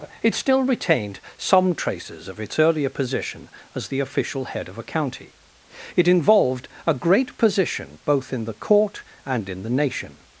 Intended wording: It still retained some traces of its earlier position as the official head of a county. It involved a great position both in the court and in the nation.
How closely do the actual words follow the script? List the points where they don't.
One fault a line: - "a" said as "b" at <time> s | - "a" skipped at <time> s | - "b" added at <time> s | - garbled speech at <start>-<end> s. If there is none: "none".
none